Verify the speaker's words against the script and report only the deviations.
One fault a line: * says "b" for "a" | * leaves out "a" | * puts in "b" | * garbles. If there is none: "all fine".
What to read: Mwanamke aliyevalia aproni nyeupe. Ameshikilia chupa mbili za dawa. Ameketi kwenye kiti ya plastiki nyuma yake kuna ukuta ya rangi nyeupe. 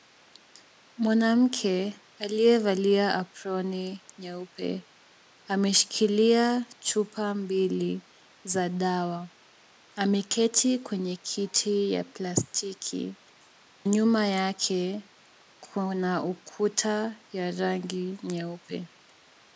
all fine